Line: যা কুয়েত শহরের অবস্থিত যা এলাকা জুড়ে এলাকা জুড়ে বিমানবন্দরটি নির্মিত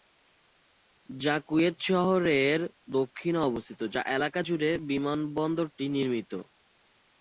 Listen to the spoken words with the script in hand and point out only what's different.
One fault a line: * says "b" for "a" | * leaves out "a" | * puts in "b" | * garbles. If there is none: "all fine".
* puts in "দক্ষিণে"
* leaves out "এলাকা জুড়ে"